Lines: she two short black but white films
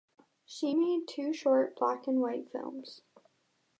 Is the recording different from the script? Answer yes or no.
yes